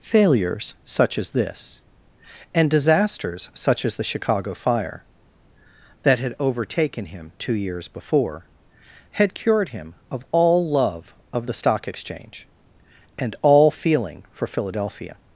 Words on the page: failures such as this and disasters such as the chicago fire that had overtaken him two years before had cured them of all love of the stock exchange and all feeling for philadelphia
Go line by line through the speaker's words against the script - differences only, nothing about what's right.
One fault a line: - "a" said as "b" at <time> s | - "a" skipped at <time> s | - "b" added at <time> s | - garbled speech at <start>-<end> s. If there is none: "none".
- "them" said as "him" at 9.7 s